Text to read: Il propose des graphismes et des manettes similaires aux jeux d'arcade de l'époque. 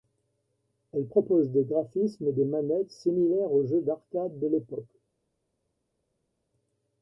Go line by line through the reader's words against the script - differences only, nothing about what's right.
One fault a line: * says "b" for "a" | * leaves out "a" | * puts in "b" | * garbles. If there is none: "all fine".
* says "Elle" for "Il"